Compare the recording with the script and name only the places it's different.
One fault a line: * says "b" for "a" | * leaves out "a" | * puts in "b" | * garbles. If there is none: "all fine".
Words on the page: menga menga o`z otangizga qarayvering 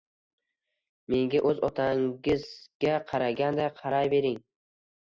* leaves out "menga"
* puts in "qaraganday"